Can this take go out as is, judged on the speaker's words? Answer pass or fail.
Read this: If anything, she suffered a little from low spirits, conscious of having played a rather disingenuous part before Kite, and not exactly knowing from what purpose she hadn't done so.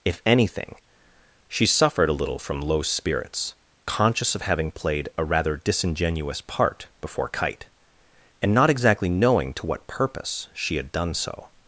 fail